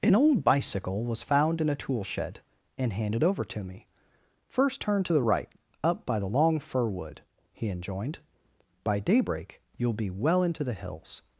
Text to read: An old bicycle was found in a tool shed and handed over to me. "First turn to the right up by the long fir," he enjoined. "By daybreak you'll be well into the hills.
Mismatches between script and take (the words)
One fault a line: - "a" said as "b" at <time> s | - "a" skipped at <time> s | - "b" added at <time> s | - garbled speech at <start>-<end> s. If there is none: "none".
- "wood" added at 6.9 s